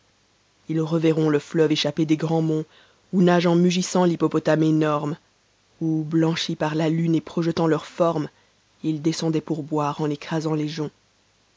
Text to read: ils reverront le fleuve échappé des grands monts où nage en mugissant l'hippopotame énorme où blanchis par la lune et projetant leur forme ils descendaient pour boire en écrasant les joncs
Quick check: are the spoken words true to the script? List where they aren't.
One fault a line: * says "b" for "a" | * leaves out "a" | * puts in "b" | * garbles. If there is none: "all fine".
all fine